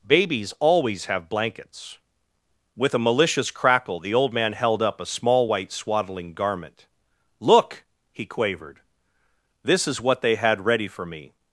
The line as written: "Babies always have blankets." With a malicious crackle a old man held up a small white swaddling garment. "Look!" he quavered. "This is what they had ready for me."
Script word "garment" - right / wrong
right